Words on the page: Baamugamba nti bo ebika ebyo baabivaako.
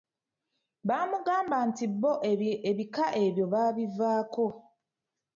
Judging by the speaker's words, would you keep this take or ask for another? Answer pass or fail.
pass